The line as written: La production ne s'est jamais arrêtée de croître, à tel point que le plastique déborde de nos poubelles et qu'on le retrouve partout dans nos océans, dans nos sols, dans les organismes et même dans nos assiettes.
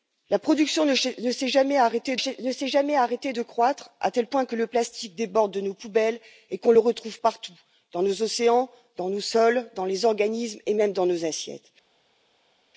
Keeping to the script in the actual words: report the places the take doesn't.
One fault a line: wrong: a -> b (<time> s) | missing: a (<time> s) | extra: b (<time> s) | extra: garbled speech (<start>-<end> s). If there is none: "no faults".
extra: s'est jamais arrêtée (2.2 s)